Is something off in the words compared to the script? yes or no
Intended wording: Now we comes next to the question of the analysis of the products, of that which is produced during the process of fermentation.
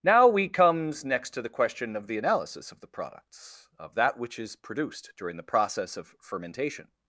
no